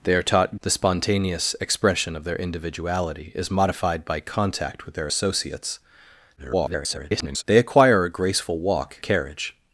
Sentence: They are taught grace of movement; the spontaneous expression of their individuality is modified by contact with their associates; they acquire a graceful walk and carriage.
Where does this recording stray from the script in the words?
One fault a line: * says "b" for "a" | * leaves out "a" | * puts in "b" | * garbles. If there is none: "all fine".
* leaves out "grace of movement"
* garbles
* leaves out "and"